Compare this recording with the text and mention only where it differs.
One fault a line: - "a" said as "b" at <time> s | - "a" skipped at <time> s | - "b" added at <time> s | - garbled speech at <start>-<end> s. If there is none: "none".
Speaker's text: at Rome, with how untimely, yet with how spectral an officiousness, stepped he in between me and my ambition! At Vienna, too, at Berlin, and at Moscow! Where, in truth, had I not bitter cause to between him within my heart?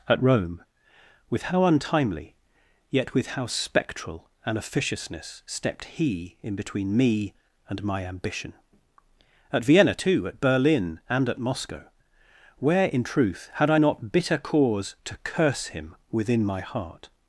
- "between" said as "curse" at 15.2 s